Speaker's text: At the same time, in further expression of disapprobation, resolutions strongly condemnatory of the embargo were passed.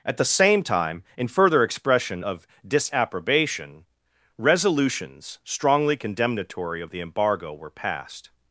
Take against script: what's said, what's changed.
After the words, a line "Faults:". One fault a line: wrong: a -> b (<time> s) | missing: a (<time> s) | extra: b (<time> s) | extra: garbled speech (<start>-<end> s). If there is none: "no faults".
At the same time, in further expression of disapprobation, resolutions strongly condemnatory of the embargo were passed.
Faults:
no faults